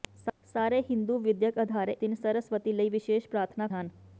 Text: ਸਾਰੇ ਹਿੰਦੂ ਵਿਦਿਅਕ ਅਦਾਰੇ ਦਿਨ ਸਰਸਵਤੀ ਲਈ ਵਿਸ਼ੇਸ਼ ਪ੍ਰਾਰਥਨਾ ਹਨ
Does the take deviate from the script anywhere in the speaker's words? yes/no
no